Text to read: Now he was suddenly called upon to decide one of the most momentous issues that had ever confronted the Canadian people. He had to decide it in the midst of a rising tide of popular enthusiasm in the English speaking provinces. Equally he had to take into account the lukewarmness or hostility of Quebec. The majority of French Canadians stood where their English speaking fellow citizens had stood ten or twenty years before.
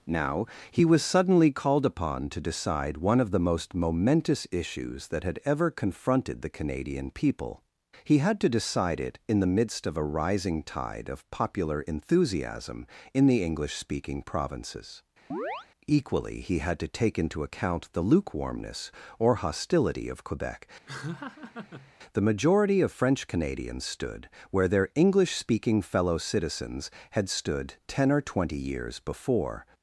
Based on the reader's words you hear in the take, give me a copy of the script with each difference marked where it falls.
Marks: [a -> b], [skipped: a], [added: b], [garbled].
Now he was suddenly called upon to decide one of the most momentous issues that had ever confronted the Canadian people. He had to decide it in the midst of a rising tide of popular enthusiasm in the English speaking provinces. Equally he had to take into account the lukewarmness or hostility of Quebec. The majority of French Canadians stood where their English speaking fellow citizens had stood ten or twenty years before.